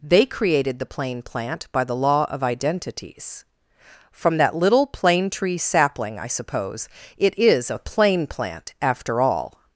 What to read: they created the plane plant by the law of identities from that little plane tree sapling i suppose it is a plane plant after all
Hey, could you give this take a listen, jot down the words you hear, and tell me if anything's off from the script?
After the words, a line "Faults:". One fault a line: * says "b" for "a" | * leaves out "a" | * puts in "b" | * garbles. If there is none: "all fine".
they created the plane plant by the law of identities from that little plane tree sapling i suppose it is a plane plant after all
Faults:
all fine